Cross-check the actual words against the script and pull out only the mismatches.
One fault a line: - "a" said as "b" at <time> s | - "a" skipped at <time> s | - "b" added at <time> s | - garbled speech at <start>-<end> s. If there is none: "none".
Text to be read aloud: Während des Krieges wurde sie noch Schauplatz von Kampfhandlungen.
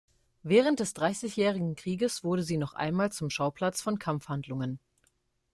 - "Dreißigjährigen" added at 0.9 s
- "einmal zum" added at 2.7 s